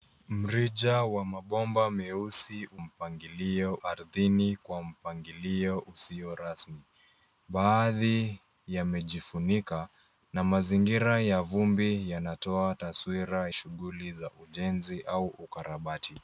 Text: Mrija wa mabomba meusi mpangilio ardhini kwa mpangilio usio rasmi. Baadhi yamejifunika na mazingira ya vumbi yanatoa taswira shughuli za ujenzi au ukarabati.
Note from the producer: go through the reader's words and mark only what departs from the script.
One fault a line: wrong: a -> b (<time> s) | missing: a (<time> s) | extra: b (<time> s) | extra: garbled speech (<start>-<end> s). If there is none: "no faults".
no faults